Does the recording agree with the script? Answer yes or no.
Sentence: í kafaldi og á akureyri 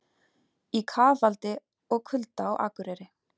no